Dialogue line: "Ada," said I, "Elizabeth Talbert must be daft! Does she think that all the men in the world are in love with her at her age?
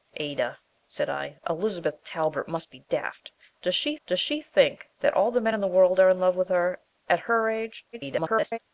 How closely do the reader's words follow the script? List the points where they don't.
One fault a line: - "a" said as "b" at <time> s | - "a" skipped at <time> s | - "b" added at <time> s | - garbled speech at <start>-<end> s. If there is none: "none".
- "does she" added at 4.1 s
- garbled speech at 7.9-8.6 s